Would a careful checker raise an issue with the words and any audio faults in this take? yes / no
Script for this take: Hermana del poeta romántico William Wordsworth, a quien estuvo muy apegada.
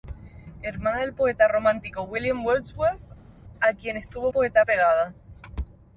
yes